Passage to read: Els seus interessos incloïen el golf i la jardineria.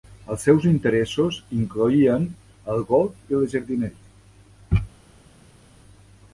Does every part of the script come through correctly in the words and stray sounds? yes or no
yes